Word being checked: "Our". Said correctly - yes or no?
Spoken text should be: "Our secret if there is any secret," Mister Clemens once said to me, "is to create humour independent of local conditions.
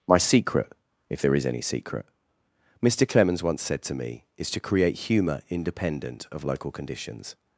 no